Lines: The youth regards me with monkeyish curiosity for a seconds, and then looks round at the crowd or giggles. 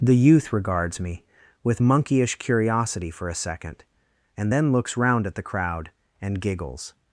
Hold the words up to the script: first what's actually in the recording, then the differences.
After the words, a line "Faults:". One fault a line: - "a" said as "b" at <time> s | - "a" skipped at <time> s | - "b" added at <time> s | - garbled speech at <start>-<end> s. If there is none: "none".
The youth regards me with monkeyish curiosity for a second, and then looks round at the crowd and giggles.
Faults:
- "seconds" said as "second" at 3.3 s
- "or" said as "and" at 6.2 s